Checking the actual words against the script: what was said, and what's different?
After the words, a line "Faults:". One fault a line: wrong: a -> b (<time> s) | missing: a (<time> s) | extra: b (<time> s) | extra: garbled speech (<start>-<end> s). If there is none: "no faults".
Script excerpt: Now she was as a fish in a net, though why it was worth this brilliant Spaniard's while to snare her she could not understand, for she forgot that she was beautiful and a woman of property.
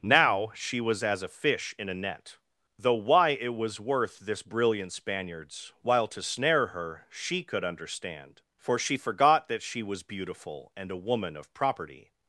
Now she was as a fish in a net, though why it was worth this brilliant Spaniard's while to snare her she could understand, for she forgot that she was beautiful and a woman of property.
Faults:
missing: not (7.6 s)